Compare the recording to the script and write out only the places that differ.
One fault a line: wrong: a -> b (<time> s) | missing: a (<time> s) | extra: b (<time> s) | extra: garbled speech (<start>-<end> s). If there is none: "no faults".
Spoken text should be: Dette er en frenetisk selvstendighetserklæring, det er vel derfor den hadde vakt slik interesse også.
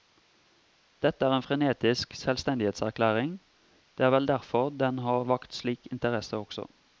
wrong: hadde -> har (5.0 s)